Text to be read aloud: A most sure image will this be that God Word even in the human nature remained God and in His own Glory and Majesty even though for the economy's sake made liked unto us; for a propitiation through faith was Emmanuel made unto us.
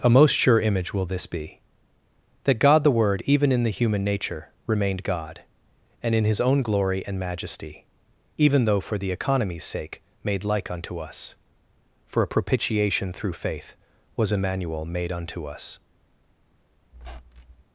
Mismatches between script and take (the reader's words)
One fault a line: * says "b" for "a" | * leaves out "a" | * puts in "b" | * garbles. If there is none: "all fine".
* puts in "the"
* says "like" for "liked"